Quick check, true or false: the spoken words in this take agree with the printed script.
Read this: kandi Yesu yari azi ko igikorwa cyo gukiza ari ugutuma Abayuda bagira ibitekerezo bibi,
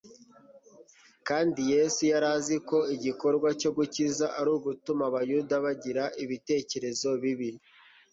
true